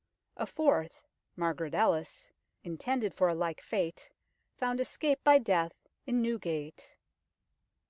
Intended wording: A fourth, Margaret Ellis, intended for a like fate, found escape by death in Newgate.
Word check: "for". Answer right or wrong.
right